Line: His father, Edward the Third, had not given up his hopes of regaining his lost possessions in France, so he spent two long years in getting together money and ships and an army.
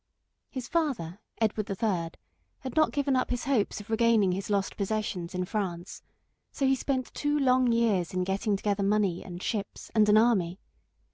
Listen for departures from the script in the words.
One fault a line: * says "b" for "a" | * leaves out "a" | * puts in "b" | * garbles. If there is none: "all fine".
all fine